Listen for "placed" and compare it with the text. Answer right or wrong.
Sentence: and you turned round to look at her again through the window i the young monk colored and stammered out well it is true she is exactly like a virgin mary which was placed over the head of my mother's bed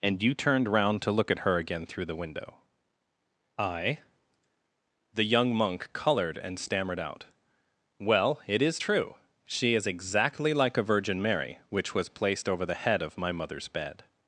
right